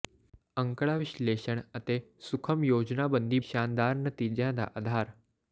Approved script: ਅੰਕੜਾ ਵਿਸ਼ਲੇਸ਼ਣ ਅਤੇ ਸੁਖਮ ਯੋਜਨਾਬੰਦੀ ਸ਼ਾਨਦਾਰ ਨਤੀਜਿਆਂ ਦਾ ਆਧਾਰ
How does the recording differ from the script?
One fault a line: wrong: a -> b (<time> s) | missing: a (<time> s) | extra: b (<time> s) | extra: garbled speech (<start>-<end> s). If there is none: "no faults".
no faults